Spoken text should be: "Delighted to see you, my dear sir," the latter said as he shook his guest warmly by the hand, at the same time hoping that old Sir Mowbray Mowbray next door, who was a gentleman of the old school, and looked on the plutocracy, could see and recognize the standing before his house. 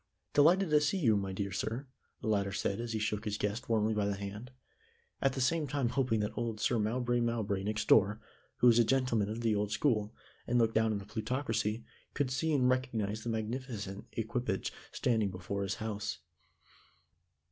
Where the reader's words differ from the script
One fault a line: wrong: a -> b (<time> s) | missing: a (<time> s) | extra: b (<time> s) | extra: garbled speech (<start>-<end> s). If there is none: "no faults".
extra: down (10.7 s)
extra: magnificent equipage (13.3 s)